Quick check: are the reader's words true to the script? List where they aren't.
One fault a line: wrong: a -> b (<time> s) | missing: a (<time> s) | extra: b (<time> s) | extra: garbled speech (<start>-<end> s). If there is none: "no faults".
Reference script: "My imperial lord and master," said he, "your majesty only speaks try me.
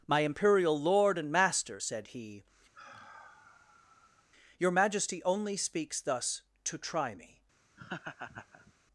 extra: thus to (6.0 s)